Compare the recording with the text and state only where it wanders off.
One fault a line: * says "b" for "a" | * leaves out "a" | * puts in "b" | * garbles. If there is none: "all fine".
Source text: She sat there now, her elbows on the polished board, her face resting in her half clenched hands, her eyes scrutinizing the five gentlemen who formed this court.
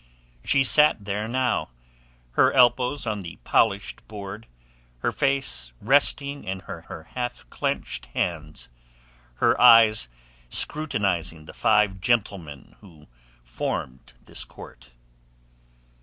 * puts in "her"